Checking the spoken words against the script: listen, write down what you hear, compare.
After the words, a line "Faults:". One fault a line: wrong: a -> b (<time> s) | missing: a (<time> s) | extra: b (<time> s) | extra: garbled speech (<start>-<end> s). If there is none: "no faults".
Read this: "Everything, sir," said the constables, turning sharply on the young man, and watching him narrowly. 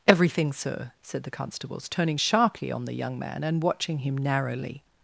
"Everything, sir," said the constables, turning sharply on the young man, and watching him narrowly.
Faults:
no faults